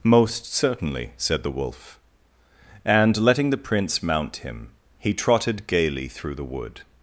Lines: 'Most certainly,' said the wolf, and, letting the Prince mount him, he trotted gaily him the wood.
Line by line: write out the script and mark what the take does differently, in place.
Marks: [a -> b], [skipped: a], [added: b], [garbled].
'Most certainly,' said the wolf, and, letting the Prince mount him, he trotted gaily [him -> through] the wood.